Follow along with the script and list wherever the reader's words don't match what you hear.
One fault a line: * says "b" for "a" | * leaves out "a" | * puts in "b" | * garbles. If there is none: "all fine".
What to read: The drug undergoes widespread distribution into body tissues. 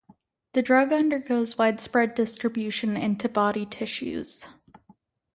all fine